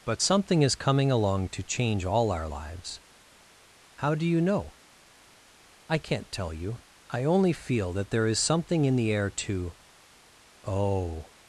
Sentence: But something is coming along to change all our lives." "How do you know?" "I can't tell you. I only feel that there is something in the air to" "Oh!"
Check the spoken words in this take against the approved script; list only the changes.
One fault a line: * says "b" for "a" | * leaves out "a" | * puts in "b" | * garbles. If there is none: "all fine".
all fine